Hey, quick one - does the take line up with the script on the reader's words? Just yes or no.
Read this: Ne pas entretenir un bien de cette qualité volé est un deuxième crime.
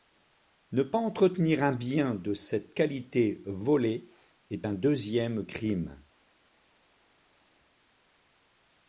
yes